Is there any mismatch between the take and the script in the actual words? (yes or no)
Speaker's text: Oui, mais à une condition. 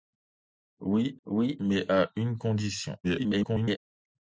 yes